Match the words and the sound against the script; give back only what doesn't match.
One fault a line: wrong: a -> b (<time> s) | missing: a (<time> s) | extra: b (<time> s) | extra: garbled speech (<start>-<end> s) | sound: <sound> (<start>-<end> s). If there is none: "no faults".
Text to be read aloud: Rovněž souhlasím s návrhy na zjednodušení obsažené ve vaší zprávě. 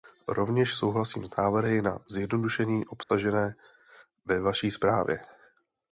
sound: dropout (3.0-3.1 s)